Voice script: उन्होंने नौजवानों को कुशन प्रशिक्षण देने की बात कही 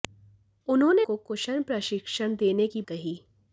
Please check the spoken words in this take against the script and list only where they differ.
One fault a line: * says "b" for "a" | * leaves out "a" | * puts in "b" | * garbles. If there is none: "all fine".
* leaves out "नौजवानों"
* leaves out "बात"